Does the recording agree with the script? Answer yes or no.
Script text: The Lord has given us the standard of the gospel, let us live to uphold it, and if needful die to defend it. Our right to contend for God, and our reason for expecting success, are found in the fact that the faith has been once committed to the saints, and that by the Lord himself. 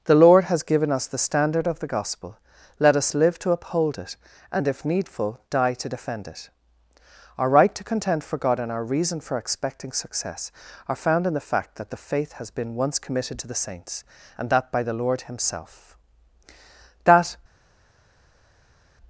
no